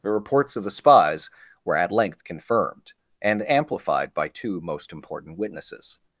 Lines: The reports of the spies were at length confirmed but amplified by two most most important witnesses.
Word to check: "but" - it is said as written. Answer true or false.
false